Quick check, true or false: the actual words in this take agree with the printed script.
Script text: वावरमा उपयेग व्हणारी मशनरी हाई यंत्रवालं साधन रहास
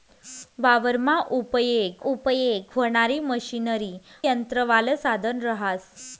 false